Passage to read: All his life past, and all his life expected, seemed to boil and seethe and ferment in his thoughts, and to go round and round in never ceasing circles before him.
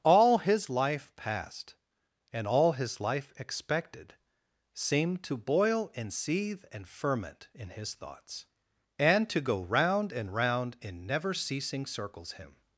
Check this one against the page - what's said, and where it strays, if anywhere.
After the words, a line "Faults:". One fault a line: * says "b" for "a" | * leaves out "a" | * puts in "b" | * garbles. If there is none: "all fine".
All his life past, and all his life expected, seemed to boil and seethe and ferment in his thoughts, and to go round and round in never ceasing circles him.
Faults:
* leaves out "before"